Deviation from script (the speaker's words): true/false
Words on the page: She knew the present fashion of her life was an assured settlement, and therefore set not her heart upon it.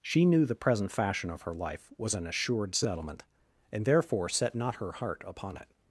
false